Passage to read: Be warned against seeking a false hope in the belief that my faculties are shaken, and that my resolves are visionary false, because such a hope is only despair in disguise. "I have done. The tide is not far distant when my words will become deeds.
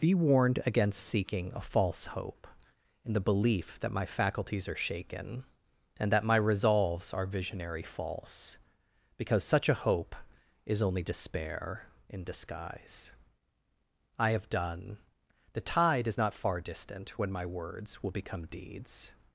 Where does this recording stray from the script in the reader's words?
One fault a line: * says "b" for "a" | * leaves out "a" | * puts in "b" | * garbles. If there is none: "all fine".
all fine